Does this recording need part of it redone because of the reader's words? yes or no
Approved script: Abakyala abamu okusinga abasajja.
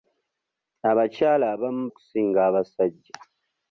no